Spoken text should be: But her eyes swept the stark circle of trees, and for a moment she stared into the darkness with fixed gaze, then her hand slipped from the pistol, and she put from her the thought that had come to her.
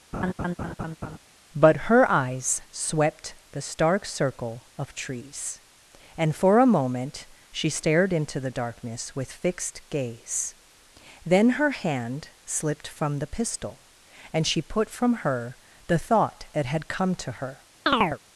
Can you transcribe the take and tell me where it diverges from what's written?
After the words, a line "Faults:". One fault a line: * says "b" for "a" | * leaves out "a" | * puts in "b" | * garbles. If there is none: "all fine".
But her eyes swept the stark circle of trees, and for a moment she stared into the darkness with fixed gaze, then her hand slipped from the pistol, and she put from her the thought that had come to her.
Faults:
all fine